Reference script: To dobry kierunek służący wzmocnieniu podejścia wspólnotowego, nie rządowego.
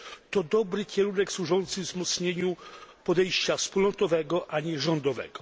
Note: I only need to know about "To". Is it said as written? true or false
true